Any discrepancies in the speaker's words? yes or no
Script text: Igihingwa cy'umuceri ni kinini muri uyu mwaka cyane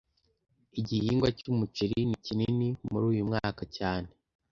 no